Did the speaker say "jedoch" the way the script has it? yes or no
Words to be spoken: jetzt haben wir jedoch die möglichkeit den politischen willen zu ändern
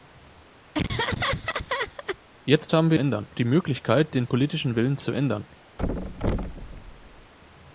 no